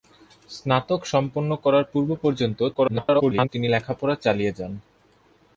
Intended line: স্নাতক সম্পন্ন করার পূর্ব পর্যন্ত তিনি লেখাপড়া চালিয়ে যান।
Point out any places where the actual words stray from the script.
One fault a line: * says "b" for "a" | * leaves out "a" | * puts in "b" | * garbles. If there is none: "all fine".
* garbles